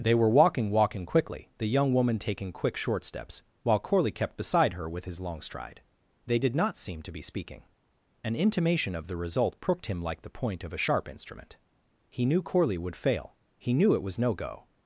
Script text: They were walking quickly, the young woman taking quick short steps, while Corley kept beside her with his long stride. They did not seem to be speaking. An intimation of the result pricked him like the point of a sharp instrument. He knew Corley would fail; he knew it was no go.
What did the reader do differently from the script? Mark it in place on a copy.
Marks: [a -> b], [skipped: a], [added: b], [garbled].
They were walking [added: walking] quickly, the young woman taking quick short steps, while Corley kept beside her with his long stride. They did not seem to be speaking. An intimation of the result pricked him like the point of a sharp instrument. He knew Corley would fail; he knew it was no go.